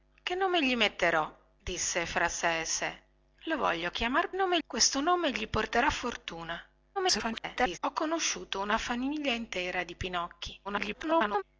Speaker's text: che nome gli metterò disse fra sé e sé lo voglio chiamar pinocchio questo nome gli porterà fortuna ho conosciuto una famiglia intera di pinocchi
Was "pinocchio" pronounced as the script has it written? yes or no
no